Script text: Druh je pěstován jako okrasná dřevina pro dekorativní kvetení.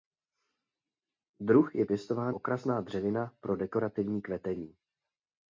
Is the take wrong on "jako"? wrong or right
wrong